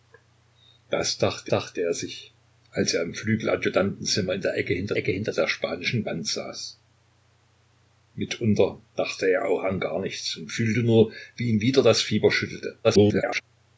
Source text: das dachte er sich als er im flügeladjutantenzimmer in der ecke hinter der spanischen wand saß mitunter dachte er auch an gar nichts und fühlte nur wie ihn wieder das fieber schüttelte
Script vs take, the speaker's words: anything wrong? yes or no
yes